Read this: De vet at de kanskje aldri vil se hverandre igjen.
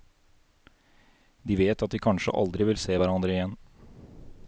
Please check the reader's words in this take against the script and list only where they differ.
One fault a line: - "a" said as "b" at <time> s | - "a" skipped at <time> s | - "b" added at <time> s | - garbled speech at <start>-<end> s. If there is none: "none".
none